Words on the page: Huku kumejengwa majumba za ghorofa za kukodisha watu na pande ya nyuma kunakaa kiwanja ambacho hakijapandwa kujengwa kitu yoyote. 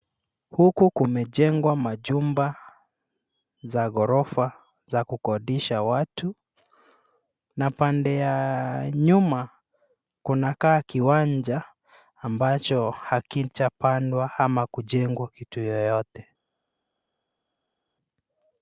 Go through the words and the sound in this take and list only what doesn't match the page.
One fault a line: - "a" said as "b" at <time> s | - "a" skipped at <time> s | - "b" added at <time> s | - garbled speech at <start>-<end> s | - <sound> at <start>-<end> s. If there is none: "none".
- "ama" added at 14.4 s